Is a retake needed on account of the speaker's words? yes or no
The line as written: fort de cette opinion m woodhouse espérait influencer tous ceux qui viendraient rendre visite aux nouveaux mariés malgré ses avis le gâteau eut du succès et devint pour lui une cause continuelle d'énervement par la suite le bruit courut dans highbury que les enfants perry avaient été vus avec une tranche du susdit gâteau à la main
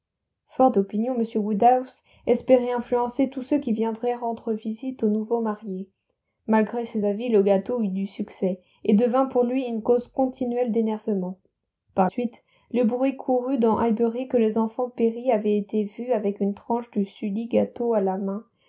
yes